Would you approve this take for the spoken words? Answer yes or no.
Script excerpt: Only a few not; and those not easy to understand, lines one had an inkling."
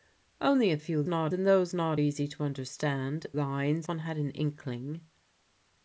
yes